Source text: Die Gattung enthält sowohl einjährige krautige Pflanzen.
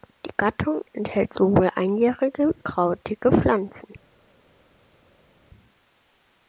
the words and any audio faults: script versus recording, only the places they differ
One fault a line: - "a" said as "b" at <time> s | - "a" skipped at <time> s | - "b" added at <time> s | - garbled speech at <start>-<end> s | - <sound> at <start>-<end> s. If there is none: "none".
none